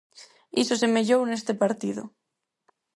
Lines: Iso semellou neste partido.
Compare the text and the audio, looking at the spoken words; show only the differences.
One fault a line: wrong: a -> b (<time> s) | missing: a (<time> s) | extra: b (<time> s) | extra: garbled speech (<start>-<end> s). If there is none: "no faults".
no faults